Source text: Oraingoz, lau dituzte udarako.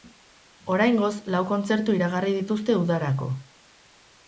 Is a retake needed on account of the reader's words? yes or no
yes